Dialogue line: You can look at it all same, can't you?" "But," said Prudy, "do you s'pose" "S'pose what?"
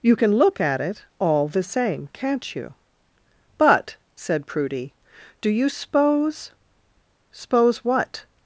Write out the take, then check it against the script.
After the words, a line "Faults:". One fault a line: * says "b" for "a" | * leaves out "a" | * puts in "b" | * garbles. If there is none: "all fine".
You can look at it all the same, can't you?" "But," said Prudy, "do you s'pose" "S'pose what?"
Faults:
* puts in "the"